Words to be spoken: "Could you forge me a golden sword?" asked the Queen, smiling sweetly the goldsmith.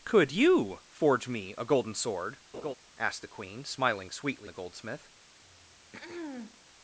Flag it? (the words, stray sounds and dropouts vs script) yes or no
yes